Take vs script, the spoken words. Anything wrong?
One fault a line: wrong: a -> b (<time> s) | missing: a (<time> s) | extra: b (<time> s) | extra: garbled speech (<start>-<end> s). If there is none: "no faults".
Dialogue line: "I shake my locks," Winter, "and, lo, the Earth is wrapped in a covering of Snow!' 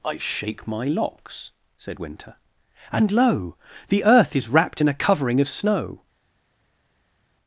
extra: said (1.8 s)